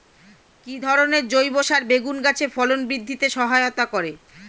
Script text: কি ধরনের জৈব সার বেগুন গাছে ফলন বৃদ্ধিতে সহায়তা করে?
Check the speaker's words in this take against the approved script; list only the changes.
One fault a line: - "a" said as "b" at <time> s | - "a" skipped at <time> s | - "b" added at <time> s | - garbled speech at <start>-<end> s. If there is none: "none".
none